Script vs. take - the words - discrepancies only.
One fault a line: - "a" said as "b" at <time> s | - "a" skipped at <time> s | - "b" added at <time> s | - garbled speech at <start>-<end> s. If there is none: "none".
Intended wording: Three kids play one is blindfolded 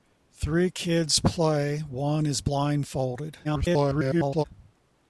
- garbled speech at 3.4-4.4 s